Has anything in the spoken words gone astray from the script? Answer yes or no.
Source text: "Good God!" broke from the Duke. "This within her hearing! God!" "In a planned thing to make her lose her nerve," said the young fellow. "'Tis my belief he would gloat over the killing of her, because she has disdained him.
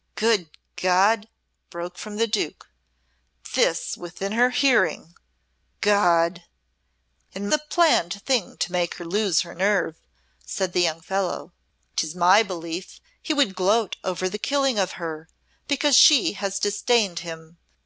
no